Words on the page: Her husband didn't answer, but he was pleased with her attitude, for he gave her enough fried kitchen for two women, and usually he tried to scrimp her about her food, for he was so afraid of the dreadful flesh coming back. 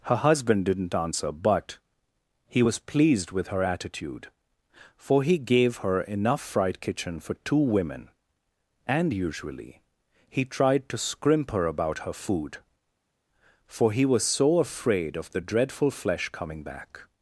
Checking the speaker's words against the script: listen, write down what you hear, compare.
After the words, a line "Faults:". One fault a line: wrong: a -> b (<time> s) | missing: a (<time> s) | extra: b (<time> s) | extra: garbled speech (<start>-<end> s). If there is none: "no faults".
Her husband didn't answer, but he was pleased with her attitude, for he gave her enough fried kitchen for two women, and usually he tried to scrimp her about her food, for he was so afraid of the dreadful flesh coming back.
Faults:
no faults